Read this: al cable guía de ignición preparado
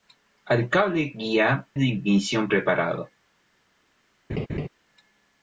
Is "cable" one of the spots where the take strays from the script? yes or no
no